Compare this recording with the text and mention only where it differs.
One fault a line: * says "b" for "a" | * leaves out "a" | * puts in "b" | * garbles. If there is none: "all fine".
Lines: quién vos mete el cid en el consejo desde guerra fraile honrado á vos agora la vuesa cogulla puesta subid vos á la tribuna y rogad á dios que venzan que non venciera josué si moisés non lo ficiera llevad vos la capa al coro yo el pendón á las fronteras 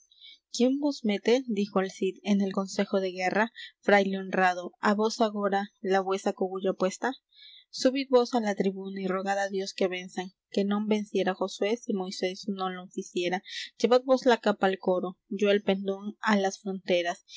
* puts in "dijo"
* says "de" for "desde"